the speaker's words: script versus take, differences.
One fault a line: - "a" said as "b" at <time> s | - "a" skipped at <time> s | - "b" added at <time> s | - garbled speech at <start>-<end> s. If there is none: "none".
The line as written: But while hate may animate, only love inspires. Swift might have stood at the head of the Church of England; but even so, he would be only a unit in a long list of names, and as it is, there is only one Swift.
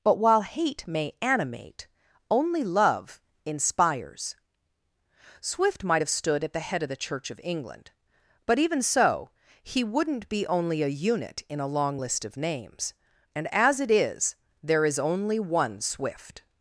- "would" said as "wouldn't" at 9.8 s